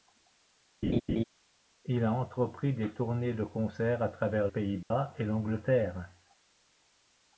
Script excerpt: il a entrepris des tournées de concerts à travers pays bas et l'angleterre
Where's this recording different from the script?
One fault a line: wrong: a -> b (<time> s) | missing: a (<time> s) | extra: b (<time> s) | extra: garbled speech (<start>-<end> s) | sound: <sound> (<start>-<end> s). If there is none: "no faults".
sound: laugh (0.8-1.2 s)
sound: dropout (4.8-4.9 s)